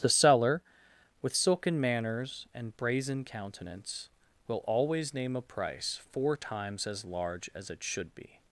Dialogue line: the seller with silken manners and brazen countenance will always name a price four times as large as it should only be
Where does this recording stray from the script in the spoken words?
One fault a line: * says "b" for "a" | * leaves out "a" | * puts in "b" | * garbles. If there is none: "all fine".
* leaves out "only"